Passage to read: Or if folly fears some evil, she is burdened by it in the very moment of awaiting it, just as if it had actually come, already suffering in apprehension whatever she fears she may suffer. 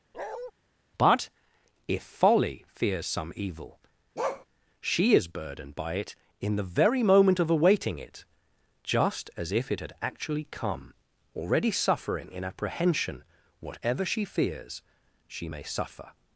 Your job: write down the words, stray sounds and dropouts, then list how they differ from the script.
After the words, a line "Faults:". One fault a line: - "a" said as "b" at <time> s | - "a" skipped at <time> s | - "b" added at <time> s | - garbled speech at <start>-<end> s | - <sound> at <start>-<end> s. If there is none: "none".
But if folly fears some evil, she is burdened by it in the very moment of awaiting it, just as if it had actually come, already suffering in apprehension whatever she fears she may suffer.
Faults:
- bark at 0.1-0.5 s
- "Or" said as "But" at 1.0 s
- bark at 4.2-4.5 s